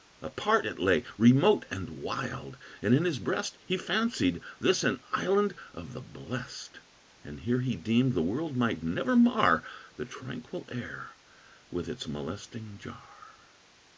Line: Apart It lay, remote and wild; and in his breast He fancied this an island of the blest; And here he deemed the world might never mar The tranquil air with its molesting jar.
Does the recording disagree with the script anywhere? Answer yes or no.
no